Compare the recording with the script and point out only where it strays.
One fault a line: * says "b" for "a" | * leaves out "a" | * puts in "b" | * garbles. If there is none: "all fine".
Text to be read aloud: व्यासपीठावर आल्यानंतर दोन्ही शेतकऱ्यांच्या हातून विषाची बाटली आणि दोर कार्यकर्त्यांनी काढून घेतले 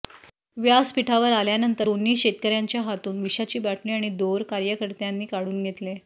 all fine